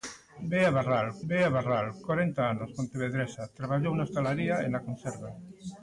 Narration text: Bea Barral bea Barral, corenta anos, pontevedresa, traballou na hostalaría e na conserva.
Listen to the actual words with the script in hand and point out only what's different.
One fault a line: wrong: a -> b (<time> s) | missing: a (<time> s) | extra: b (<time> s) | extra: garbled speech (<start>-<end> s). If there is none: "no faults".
no faults